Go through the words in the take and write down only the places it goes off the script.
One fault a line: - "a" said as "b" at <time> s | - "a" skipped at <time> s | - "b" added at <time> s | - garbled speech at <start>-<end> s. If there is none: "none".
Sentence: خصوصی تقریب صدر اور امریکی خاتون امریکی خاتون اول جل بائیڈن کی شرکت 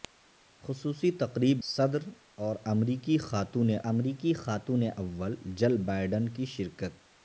none